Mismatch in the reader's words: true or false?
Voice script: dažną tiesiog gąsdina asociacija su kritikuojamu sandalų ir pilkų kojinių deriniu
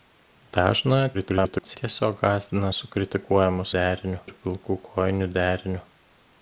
true